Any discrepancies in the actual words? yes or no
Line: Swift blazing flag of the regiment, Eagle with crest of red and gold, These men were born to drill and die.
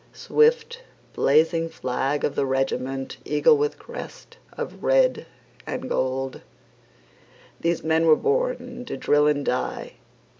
no